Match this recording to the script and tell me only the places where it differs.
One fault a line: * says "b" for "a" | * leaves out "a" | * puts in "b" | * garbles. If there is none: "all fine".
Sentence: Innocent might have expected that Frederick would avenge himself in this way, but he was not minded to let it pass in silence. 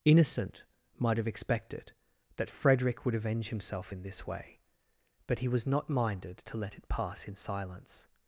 all fine